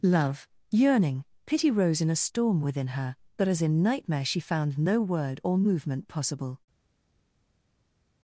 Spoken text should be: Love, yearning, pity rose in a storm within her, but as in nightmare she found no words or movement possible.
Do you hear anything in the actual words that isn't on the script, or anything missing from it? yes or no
yes